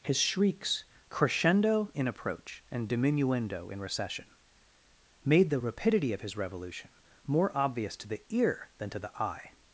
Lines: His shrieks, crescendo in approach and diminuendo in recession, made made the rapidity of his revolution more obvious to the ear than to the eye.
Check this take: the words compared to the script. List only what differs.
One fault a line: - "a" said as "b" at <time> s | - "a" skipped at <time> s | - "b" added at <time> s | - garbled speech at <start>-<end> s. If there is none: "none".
- "made" skipped at 5.5 s